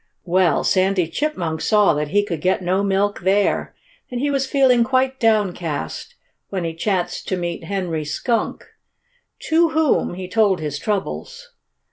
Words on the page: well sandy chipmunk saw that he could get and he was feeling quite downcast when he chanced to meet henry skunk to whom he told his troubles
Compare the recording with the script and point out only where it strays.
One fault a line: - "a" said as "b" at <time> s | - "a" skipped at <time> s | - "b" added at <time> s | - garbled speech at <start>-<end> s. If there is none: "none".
- "no milk there" added at 2.6 s